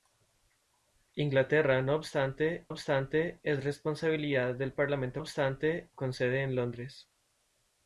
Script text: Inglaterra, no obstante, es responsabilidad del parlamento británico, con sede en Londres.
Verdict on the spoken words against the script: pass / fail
fail